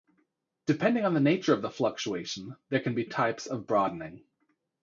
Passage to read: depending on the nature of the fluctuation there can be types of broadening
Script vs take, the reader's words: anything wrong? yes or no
no